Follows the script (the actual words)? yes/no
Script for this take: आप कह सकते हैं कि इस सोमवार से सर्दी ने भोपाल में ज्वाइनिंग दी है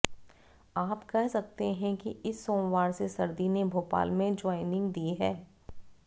yes